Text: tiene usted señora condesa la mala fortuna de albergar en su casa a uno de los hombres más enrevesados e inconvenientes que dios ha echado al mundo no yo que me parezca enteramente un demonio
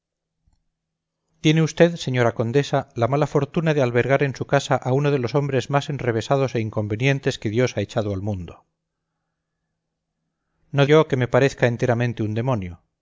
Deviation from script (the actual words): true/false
false